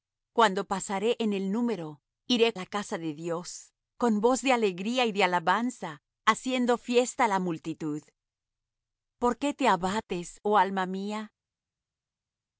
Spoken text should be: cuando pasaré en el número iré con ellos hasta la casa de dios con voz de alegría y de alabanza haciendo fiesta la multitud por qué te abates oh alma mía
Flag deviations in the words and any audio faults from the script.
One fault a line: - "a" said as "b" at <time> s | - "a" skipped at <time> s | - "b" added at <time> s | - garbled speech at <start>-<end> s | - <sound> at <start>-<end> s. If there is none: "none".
- "con ellos hasta" skipped at 2.5 s